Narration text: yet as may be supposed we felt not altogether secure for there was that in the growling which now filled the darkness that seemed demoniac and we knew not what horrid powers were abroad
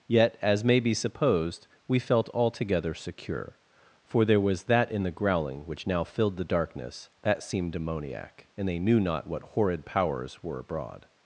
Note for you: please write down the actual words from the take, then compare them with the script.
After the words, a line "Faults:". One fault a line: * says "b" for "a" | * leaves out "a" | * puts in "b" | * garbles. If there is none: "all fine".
yet as may be supposed we felt altogether secure for there was that in the growling which now filled the darkness that seemed demoniac and they knew not what horrid powers were abroad
Faults:
* leaves out "not"
* says "they" for "we"